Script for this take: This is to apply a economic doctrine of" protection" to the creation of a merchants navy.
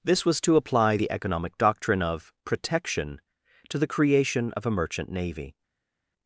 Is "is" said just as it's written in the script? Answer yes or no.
no